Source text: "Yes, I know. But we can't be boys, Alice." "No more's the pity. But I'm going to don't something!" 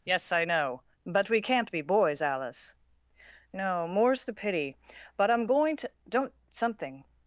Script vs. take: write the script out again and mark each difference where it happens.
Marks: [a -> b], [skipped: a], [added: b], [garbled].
"Yes, I know. But we can't be boys, Alice." "No more's the pity. But I'm going to don't something!"